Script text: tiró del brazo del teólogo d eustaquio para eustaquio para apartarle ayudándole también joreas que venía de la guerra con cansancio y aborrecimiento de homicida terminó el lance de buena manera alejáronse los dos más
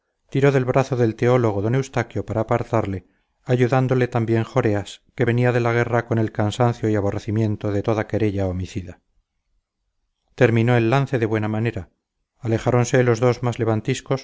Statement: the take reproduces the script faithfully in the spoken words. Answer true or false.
false